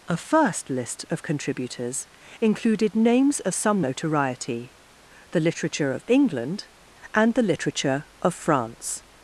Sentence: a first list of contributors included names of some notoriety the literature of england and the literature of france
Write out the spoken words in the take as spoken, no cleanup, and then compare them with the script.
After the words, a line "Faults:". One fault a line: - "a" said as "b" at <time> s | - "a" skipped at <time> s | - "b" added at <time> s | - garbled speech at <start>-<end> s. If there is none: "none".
a first list of contributors included names of some notoriety the literature of england and the literature of france
Faults:
none